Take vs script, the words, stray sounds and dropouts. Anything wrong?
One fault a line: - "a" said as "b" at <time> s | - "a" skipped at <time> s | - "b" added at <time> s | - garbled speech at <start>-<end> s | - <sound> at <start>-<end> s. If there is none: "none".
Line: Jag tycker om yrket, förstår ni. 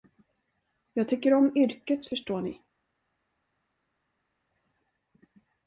none